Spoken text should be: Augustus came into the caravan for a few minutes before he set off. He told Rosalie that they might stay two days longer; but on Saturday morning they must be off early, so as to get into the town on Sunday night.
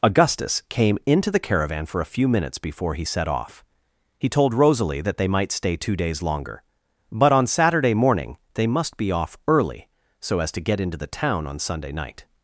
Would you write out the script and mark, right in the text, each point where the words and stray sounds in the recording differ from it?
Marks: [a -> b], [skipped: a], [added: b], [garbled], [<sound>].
Augustus came into the caravan for a few minutes before he set off. He told Rosalie that they might stay two days longer; but on Saturday morning they must be off early, so as to get into the town on Sunday night.